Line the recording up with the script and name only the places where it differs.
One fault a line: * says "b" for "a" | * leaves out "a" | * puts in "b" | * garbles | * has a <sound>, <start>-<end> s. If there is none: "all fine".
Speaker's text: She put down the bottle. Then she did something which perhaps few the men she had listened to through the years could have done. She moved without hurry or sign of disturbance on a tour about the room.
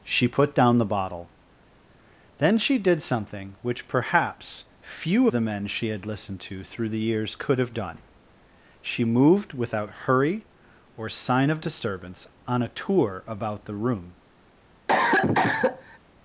* has a cough, 14.9-16.0 s